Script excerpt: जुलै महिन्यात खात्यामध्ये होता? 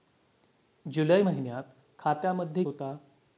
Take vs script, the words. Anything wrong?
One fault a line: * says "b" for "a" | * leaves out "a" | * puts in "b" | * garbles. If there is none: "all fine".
all fine